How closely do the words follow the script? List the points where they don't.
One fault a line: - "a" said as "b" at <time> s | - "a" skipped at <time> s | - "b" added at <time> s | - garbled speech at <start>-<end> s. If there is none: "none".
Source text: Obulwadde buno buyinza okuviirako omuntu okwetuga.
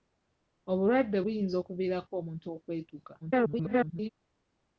- "buno" skipped at 1.2 s
- garbled speech at 3.2-4.1 s